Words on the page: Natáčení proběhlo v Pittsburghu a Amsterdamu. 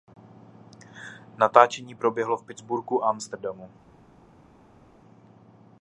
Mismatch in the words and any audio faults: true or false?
false